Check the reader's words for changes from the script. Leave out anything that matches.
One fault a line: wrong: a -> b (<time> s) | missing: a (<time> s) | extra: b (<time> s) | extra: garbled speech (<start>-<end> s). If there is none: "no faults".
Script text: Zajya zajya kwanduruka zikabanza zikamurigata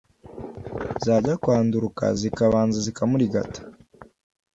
missing: zajya (1.3 s)